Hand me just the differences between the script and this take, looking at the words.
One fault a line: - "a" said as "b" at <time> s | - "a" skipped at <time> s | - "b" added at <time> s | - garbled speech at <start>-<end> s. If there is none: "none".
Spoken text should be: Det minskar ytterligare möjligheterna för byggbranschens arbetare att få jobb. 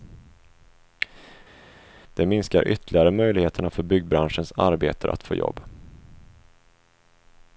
none